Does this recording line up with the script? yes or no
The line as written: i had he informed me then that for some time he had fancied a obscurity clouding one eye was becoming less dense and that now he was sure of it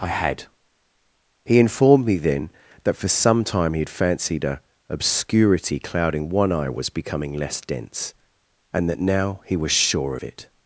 yes